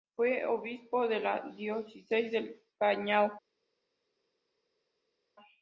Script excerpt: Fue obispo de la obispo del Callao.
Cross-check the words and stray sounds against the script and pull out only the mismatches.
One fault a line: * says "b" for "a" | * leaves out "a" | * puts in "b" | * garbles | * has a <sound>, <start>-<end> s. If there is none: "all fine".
* says "diócesis" for "obispo"